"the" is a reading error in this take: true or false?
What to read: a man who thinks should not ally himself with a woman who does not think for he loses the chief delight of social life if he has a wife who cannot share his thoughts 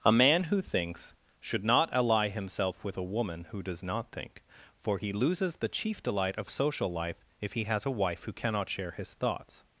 false